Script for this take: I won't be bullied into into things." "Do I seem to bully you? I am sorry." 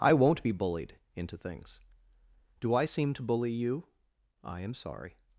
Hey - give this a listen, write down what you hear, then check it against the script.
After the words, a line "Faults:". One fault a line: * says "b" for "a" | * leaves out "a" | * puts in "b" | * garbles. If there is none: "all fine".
I won't be bullied into things." "Do I seem to bully you? I am sorry."
Faults:
* leaves out "into"